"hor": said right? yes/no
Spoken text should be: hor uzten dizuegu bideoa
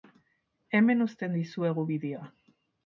no